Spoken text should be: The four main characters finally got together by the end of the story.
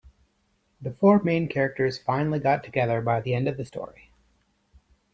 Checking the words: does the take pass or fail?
pass